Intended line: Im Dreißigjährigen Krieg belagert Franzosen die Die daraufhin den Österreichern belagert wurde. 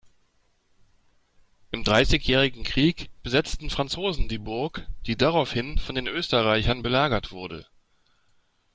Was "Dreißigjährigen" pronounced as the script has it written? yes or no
yes